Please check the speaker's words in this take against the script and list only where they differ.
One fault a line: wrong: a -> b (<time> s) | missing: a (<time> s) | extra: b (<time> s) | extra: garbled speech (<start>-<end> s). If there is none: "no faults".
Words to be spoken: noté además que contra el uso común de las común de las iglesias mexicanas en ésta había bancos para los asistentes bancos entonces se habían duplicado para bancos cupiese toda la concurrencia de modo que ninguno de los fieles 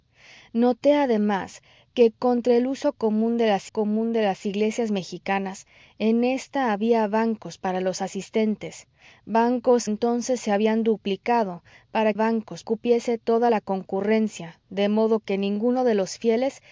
no faults